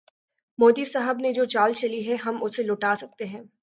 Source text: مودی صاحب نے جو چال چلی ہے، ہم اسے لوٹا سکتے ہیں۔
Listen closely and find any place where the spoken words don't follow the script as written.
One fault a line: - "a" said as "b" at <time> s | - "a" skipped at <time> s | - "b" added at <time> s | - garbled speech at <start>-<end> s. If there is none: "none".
none